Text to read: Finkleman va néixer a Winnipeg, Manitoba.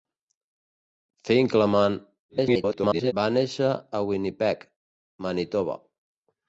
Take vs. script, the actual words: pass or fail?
fail